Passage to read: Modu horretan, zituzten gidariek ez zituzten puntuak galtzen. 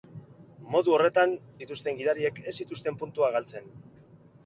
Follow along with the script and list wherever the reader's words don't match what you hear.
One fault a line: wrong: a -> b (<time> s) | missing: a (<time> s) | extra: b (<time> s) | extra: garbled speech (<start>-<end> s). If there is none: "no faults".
no faults